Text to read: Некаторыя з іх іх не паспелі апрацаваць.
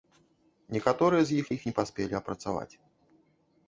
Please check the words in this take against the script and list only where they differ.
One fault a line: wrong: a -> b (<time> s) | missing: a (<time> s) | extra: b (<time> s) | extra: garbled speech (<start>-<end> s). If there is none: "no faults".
no faults